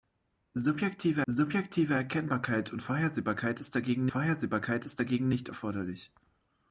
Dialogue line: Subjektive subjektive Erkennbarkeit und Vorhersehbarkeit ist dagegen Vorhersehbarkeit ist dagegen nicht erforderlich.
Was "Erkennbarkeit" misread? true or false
false